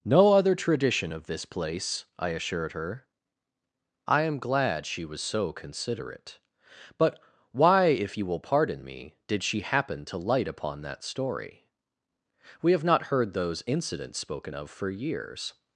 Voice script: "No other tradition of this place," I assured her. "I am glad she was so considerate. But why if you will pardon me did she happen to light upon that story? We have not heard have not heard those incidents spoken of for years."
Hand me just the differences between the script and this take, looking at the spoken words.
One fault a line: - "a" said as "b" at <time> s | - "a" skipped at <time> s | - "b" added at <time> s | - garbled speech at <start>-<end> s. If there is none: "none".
- "have not heard" skipped at 13.3 s